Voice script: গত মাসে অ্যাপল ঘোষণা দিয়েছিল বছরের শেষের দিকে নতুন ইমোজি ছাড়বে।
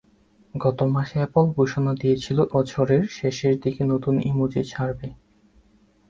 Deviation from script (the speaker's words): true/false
false